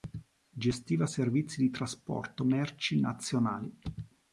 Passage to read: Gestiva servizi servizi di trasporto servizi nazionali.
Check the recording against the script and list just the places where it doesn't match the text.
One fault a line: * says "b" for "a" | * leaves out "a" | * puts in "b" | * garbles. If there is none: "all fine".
* leaves out "servizi"
* says "merci" for "servizi"